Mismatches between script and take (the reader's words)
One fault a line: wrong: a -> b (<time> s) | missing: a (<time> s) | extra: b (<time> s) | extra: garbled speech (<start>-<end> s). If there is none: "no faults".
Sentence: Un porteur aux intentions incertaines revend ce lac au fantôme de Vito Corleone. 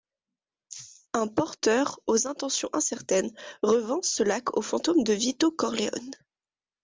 no faults